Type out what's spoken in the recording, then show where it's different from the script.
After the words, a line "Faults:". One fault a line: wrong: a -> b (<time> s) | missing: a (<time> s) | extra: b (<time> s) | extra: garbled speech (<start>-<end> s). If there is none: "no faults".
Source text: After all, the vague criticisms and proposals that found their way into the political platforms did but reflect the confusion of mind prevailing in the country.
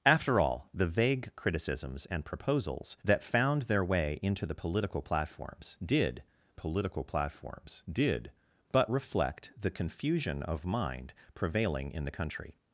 After all, the vague criticisms and proposals that found their way into the political platforms did political platforms did but reflect the confusion of mind prevailing in the country.
Faults:
extra: political platforms did (6.5 s)